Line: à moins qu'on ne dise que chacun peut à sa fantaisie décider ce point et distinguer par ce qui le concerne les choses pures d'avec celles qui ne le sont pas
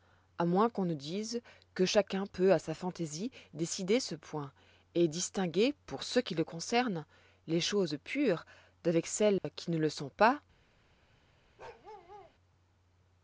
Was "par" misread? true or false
true